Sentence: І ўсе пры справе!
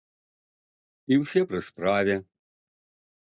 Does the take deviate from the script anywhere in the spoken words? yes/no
no